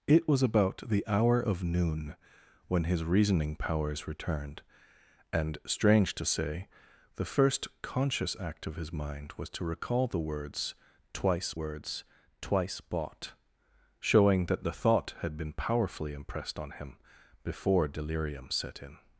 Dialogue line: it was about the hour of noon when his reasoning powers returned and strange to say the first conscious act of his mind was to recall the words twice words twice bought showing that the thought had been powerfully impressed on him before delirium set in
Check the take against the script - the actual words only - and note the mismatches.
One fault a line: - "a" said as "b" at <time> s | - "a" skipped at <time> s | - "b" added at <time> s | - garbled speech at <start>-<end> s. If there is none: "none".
none